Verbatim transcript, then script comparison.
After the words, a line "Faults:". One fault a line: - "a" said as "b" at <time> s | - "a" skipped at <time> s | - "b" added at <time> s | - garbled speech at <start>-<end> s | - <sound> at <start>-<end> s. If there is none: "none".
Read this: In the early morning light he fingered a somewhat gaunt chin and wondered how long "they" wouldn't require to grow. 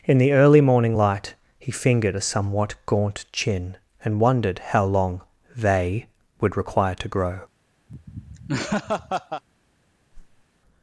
In the early morning light he fingered a somewhat gaunt chin and wondered how long "they" would require to grow.
Faults:
- "wouldn't" said as "would" at 6.4 s
- laugh at 7.9-9.4 s
- whoosh at 10.1-10.5 s